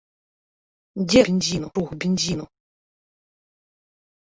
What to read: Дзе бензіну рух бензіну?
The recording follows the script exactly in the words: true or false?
true